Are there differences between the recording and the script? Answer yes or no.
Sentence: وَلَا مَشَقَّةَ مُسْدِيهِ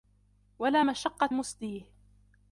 no